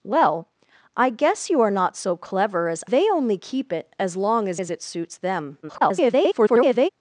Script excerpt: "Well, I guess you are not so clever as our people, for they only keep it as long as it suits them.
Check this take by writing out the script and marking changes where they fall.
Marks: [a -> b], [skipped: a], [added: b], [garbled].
"Well, I guess you are not so clever as [skipped: our people, for] they only keep it as long as [added: as] it suits them. [garbled]